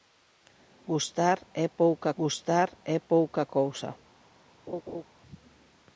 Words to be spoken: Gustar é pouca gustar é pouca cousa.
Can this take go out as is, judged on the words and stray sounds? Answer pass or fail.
fail